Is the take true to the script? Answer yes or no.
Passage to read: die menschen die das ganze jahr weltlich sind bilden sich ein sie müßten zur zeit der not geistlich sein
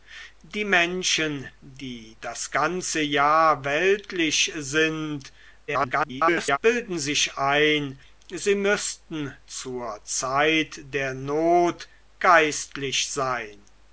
no